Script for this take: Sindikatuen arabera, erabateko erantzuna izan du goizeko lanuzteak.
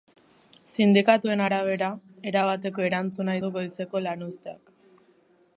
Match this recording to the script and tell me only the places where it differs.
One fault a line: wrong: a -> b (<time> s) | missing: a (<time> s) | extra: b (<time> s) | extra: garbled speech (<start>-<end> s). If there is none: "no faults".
missing: izan (3.4 s)